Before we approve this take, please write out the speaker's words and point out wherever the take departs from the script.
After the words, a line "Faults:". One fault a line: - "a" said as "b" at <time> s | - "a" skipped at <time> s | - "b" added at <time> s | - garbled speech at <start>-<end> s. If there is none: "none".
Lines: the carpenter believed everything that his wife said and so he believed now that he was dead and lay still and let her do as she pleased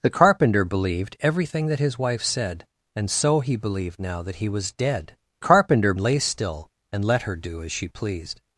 the carpenter believed everything that his wife said and so he believed now that he was dead carpenter lay still and let her do as she pleased
Faults:
- "and" said as "carpenter" at 5.4 s